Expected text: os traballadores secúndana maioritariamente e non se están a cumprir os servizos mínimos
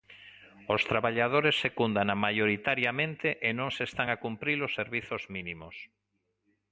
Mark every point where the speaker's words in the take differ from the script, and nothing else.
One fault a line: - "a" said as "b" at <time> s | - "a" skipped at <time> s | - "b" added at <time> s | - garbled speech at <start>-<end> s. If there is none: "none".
none